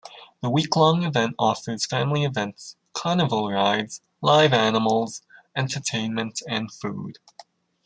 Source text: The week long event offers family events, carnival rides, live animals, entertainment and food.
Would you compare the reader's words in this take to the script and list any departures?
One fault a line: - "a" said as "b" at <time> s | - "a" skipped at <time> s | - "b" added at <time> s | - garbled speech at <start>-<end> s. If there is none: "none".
none